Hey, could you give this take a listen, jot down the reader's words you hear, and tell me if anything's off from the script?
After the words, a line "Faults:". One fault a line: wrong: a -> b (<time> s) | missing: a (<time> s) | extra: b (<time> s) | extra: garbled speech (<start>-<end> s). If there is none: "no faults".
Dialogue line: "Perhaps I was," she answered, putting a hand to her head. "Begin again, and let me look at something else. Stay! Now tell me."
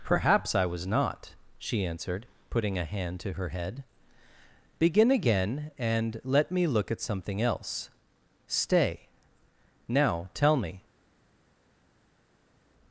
"Perhaps I was not," she answered, putting a hand to her head. "Begin again, and let me look at something else. Stay! Now tell me."
Faults:
extra: not (0.9 s)